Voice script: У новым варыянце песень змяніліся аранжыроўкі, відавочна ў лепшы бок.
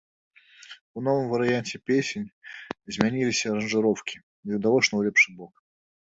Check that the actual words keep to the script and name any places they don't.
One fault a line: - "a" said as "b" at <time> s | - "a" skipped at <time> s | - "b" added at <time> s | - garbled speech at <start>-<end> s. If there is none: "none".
none